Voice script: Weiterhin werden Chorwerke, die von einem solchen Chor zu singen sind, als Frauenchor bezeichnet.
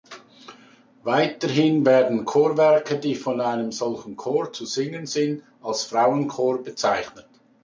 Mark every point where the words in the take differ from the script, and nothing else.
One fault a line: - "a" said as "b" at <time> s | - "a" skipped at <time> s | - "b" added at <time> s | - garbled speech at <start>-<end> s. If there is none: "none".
none